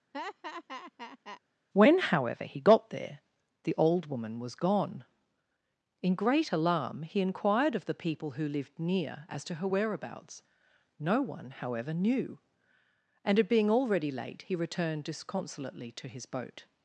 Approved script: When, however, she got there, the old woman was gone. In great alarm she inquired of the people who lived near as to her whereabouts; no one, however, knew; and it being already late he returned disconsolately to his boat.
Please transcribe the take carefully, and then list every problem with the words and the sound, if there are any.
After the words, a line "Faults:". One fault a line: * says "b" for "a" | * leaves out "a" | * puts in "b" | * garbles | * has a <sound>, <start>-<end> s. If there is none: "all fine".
When, however, he got there, the old woman was gone. In great alarm he inquired of the people who lived near as to her whereabouts; no one, however, knew; and it being already late he returned disconsolately to his boat.
Faults:
* has a laugh, 0.1-1.4 s
* says "he" for "she"
* says "he" for "she"